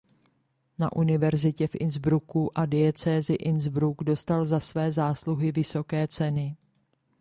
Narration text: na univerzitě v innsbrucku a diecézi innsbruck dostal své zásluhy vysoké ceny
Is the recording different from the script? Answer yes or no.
yes